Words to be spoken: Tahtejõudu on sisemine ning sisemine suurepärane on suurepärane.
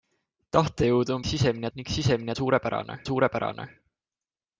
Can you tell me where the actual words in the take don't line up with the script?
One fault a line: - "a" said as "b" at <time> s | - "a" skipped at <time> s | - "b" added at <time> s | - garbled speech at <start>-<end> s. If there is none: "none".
none